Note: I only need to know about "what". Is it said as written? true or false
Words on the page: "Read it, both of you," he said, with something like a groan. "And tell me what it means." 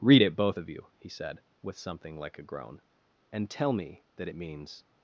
false